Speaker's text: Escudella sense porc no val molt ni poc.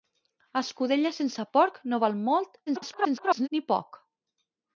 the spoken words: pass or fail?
fail